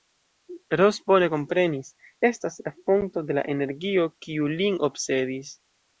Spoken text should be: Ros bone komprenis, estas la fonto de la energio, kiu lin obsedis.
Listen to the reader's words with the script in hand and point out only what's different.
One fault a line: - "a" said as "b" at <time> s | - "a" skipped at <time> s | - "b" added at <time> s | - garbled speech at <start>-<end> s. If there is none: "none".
none